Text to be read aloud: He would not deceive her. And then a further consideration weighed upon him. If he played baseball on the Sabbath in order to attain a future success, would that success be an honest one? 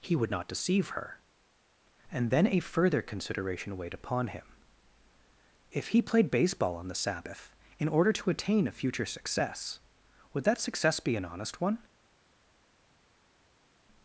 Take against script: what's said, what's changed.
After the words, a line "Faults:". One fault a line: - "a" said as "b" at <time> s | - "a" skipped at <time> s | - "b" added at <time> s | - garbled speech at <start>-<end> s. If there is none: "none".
He would not deceive her. And then a further consideration weighed upon him. If he played baseball on the Sabbath in order to attain a future success, would that success be an honest one?
Faults:
none